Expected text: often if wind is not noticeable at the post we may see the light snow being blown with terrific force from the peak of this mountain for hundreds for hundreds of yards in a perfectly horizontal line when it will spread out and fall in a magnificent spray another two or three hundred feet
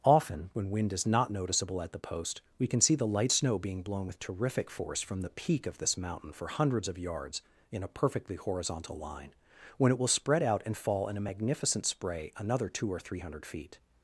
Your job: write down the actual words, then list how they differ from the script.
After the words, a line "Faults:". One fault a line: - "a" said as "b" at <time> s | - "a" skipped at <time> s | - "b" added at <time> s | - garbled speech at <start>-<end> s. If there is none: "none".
often when wind is not noticeable at the post we can see the light snow being blown with terrific force from the peak of this mountain for hundreds of yards in a perfectly horizontal line when it will spread out and fall in a magnificent spray another two or three hundred feet
Faults:
- "if" said as "when" at 0.5 s
- "may" said as "can" at 2.6 s
- "for hundreds" skipped at 6.9 s